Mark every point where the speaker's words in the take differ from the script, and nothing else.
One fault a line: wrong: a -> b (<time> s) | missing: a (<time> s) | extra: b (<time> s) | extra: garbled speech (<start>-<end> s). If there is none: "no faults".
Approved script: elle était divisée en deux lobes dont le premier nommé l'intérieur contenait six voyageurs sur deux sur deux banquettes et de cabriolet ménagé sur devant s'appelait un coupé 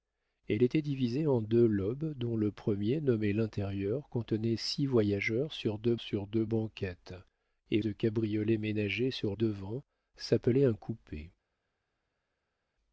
no faults